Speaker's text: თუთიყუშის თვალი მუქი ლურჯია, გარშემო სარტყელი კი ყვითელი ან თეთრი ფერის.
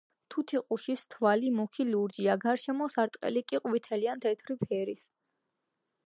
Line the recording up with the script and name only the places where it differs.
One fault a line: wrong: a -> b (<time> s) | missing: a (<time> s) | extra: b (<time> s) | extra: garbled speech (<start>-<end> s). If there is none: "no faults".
no faults